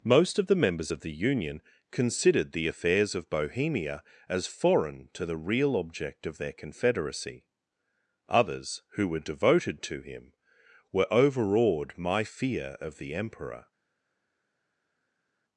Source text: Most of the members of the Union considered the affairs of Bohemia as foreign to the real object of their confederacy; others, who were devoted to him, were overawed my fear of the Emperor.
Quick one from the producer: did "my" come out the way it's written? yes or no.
yes